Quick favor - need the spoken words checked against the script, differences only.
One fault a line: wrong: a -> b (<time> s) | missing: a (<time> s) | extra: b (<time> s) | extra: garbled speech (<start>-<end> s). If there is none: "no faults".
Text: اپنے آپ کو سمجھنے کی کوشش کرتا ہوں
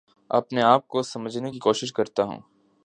no faults